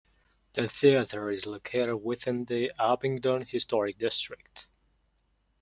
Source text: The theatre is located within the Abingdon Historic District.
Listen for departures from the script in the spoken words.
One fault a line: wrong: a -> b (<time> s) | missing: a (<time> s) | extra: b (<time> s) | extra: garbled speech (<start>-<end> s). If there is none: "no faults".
no faults